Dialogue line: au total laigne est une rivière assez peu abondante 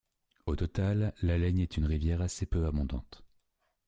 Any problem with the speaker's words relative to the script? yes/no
yes